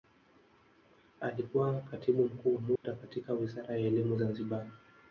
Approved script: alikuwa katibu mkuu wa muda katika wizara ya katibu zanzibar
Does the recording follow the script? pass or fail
fail